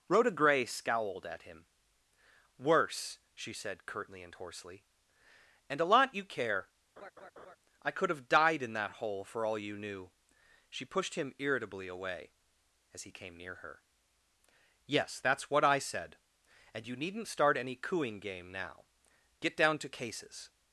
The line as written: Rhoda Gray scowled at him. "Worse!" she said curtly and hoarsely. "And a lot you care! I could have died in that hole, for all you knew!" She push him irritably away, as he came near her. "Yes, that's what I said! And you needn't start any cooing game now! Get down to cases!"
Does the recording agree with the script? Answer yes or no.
no